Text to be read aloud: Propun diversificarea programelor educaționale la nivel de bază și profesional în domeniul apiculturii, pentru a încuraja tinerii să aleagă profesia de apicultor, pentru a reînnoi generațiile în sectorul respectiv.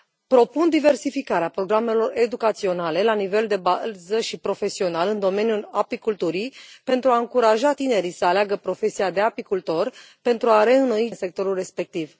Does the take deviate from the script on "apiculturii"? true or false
false